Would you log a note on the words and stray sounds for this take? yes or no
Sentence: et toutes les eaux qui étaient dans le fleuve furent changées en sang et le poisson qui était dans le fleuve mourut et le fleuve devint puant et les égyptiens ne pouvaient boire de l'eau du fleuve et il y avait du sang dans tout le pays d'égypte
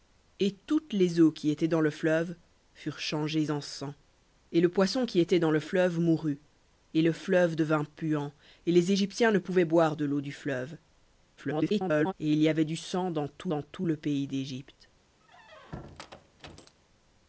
yes